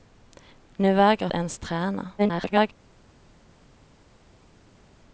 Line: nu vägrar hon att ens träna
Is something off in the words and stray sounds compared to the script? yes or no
yes